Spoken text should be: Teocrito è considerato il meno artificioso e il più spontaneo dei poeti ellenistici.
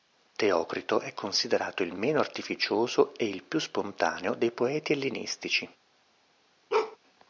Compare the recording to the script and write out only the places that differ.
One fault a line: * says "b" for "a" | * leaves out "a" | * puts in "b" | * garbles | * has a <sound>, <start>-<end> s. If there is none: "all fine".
* has a bark, 6.7-7.0 s